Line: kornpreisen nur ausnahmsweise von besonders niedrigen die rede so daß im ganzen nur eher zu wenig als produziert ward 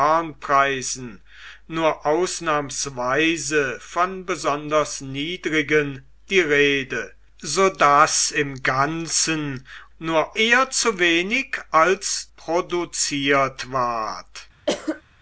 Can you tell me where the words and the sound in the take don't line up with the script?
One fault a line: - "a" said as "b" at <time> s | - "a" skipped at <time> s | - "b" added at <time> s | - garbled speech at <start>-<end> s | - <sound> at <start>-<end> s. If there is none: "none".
- cough at 14.7-15.0 s